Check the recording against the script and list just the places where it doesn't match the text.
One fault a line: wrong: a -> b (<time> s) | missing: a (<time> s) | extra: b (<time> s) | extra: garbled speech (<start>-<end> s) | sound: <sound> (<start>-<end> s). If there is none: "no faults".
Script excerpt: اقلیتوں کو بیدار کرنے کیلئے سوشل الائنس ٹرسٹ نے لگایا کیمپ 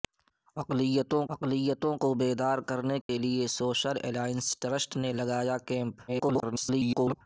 extra: اقلیتوں (1.3 s)
sound: dropout (3.0-3.1 s)
extra: garbled speech (6.1-7.2 s)